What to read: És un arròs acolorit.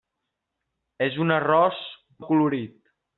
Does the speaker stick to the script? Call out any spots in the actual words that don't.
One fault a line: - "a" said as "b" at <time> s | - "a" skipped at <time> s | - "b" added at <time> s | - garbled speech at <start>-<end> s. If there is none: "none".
none